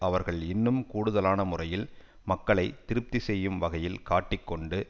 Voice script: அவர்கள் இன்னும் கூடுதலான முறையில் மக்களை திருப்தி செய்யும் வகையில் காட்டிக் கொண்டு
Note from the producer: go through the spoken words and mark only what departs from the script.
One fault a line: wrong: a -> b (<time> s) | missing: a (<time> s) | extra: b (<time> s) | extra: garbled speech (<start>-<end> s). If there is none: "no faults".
no faults